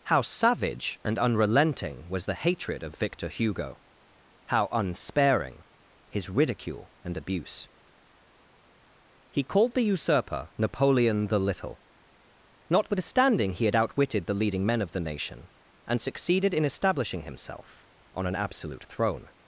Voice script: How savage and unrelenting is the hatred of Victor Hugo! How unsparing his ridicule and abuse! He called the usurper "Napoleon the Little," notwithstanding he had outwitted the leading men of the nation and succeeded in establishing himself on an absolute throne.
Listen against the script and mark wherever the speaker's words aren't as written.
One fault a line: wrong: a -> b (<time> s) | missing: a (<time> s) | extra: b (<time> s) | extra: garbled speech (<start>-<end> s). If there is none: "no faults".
wrong: is -> was (2.1 s)